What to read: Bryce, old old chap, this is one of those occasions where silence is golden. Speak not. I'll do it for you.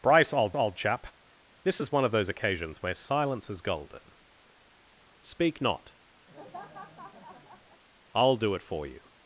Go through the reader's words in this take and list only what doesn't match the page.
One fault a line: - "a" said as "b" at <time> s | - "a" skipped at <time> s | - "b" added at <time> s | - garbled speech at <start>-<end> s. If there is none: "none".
none